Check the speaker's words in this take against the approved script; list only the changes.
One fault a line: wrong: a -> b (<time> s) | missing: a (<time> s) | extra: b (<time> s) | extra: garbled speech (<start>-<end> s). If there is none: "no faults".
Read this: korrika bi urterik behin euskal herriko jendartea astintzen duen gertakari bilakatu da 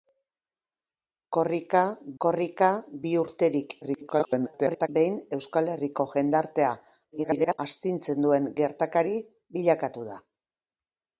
extra: korrika (2.2 s)
extra: garbled speech (3.8-4.9 s)
extra: garbled speech (7.1-7.6 s)